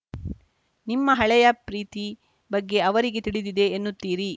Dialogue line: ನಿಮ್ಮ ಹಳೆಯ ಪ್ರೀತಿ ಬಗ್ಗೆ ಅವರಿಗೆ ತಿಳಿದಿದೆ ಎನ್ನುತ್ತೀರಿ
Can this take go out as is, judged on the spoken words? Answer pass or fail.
pass